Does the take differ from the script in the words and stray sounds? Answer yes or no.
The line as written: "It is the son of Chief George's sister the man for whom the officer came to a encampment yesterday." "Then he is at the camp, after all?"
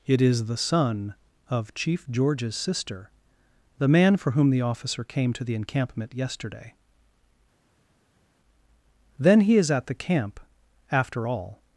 yes